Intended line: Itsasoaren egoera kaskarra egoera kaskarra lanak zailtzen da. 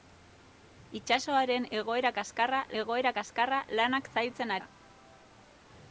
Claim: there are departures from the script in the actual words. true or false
false